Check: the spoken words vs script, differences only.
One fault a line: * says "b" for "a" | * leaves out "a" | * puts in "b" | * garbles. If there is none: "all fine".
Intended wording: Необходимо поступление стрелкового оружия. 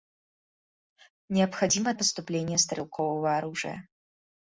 all fine